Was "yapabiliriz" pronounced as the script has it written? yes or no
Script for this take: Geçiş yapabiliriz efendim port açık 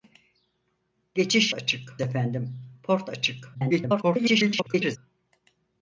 no